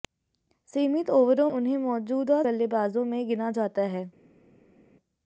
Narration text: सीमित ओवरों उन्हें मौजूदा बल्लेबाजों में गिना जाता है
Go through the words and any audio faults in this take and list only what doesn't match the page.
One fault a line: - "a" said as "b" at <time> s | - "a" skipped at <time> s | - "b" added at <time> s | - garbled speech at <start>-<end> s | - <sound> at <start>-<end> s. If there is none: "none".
none